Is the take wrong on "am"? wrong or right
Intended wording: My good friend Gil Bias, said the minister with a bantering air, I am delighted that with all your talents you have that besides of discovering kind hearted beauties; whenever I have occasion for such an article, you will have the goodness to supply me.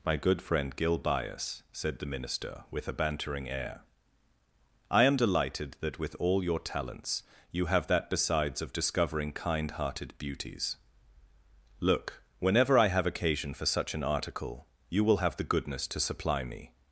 right